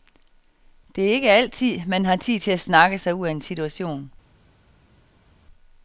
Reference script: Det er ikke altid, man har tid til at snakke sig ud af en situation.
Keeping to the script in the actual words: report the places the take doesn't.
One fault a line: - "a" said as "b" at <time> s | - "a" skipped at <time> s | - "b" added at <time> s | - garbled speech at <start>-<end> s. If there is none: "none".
none